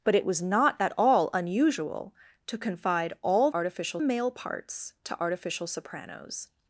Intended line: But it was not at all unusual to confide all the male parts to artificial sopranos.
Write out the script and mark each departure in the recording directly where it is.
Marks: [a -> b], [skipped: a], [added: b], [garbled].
But it was not at all unusual to confide all [the -> artificial] male parts to artificial sopranos.